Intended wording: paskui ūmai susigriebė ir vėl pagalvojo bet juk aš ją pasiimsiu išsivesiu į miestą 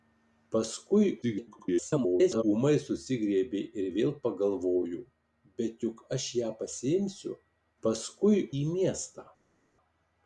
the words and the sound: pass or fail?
fail